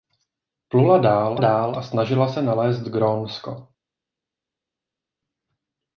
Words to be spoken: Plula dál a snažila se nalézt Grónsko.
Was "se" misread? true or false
false